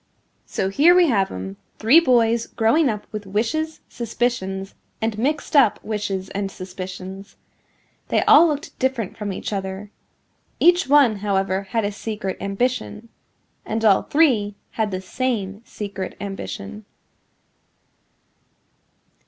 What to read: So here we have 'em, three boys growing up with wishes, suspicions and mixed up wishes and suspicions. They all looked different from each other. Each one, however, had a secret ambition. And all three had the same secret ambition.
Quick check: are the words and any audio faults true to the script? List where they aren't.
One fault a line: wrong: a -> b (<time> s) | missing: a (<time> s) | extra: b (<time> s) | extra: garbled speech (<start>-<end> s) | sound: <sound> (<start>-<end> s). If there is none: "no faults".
no faults